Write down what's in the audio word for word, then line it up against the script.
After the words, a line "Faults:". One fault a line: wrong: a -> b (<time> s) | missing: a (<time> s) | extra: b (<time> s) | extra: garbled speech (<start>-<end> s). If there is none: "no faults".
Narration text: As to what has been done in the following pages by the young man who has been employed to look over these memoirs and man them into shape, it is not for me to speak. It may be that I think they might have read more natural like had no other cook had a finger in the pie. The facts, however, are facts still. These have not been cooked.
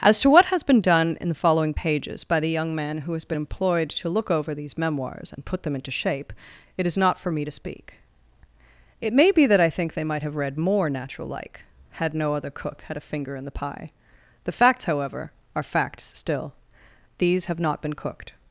As to what has been done in the following pages by the young man who has been employed to look over these memoirs and put them into shape, it is not for me to speak. It may be that I think they might have read more natural like had no other cook had a finger in the pie. The facts, however, are facts still. These have not been cooked.
Faults:
wrong: man -> put (5.4 s)